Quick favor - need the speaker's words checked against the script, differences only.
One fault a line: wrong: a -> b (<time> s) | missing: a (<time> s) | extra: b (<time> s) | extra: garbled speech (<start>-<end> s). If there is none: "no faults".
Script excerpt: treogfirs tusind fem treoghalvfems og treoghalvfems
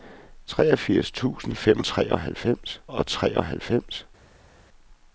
no faults